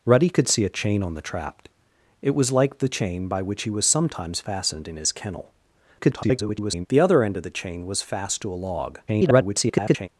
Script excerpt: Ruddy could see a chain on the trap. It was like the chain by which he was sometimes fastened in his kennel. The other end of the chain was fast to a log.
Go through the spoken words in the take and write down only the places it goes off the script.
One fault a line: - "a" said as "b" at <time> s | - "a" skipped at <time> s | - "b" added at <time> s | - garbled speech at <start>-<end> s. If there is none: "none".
- garbled speech at 6.0-6.9 s
- garbled speech at 9.1-10.1 s